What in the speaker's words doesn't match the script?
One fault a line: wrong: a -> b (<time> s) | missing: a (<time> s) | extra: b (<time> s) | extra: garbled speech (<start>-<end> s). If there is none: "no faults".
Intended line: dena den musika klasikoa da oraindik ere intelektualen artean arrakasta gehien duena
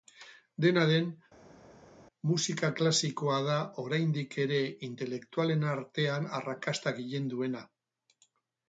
no faults